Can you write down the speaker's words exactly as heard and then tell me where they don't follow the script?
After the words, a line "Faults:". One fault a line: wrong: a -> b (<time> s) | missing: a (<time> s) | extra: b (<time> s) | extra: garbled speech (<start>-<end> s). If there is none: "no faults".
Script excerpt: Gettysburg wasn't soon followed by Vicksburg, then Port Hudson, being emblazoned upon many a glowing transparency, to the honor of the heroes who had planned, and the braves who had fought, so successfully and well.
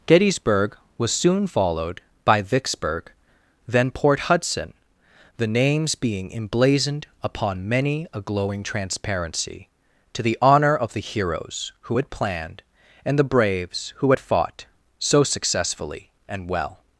Gettysburg was soon followed by Vicksburg, then Port Hudson, the names being emblazoned upon many a glowing transparency, to the honor of the heroes who had planned, and the braves who had fought, so successfully and well.
Faults:
wrong: wasn't -> was (1.0 s)
extra: the names (5.4 s)